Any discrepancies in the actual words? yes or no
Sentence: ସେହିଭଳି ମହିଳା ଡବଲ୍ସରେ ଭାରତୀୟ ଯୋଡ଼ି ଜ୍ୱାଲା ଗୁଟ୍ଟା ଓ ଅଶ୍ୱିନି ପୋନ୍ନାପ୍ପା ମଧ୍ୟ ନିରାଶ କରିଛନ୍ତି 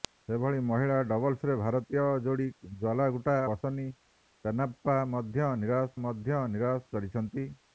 yes